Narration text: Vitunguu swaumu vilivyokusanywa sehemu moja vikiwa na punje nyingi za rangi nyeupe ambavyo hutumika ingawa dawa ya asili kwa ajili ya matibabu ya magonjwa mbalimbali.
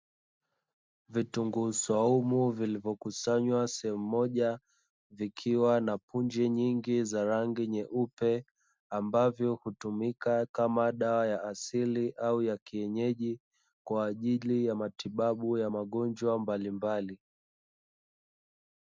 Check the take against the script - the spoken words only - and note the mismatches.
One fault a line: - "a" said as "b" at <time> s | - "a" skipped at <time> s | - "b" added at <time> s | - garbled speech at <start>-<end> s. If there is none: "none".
- "ingawa" said as "kama" at 10.4 s
- "au ya kienyeji" added at 12.1 s